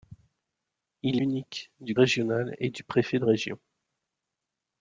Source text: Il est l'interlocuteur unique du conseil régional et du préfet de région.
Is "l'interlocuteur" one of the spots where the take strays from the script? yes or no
yes